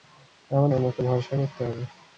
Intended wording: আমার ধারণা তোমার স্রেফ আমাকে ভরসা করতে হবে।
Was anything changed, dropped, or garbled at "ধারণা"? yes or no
yes